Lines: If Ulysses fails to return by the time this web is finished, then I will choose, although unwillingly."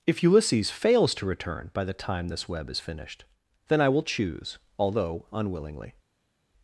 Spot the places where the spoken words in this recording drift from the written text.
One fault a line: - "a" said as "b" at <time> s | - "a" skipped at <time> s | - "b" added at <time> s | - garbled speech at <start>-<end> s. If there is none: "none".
none